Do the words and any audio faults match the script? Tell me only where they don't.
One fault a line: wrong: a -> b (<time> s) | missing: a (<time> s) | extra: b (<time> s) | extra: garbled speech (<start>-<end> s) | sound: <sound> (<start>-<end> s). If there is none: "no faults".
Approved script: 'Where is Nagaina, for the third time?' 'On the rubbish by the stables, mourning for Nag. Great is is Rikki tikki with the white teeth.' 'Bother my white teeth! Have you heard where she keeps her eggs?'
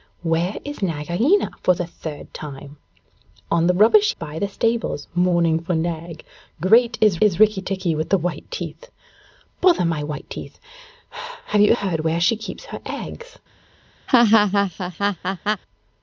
sound: laugh (14.1-15.6 s)